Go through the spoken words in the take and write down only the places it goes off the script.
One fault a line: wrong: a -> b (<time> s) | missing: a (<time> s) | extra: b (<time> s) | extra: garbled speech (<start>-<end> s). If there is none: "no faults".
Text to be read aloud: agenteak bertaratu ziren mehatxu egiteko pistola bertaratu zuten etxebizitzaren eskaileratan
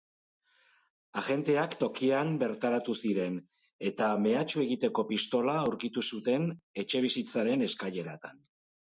extra: tokian (1.8 s)
extra: eta (3.9 s)
wrong: bertaratu -> aurkitu (5.6 s)